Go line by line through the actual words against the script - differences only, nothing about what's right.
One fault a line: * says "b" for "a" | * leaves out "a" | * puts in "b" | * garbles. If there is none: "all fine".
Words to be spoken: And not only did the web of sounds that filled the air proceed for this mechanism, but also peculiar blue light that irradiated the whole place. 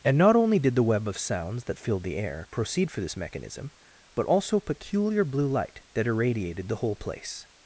all fine